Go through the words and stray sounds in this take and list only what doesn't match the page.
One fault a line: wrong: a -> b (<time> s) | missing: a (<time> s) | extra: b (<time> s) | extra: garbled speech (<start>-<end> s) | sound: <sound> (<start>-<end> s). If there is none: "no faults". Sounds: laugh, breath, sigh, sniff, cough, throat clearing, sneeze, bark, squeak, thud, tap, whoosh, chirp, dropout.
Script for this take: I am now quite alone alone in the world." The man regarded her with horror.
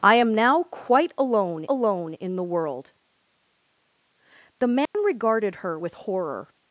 sound: dropout (4.9-4.9 s)